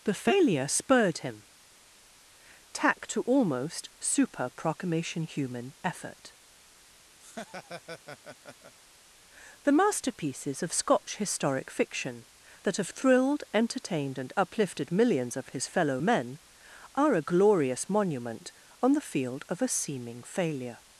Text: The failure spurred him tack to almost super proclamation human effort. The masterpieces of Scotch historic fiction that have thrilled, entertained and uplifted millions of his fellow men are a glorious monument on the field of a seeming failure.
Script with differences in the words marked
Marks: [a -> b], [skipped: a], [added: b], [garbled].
The failure spurred him tack to almost super proclamation human effort. The masterpieces of Scotch historic fiction that have thrilled, entertained and uplifted millions of his fellow men are a glorious monument on the field of a seeming failure.